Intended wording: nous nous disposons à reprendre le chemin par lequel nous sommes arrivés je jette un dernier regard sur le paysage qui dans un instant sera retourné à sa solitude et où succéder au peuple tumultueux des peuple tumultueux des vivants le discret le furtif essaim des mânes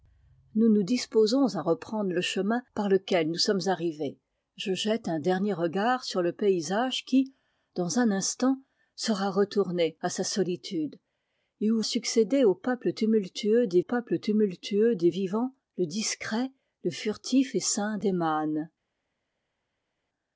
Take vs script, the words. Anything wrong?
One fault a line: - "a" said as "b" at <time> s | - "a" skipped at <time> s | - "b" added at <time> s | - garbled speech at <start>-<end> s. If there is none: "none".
none